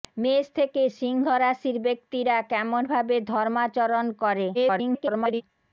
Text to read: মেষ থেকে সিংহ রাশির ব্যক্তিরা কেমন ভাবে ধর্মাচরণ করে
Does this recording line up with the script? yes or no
no